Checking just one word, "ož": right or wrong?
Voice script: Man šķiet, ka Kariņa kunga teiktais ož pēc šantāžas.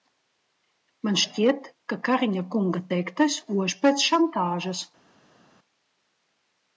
right